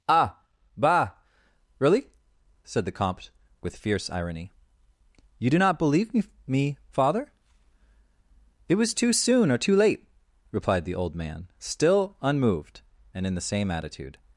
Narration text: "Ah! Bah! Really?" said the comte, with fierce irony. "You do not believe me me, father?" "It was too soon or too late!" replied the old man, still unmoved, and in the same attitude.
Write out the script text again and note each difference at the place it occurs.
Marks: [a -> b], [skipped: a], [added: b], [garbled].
"Ah! Bah! Really?" said the comte, with fierce irony. "You do not believe me me, father?" "It was too soon or too late!" replied the old man, still unmoved, and in the same attitude.